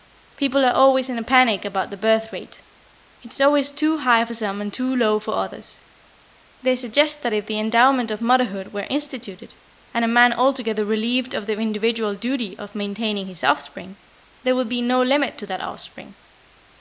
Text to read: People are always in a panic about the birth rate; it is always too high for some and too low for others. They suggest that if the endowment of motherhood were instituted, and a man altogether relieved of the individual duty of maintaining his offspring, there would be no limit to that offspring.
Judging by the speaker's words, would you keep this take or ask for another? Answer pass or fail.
pass